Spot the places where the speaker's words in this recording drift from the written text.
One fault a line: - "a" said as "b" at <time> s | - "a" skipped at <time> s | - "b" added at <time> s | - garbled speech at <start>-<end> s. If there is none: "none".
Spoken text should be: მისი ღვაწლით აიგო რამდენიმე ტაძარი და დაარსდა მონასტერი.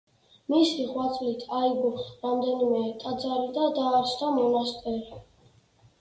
none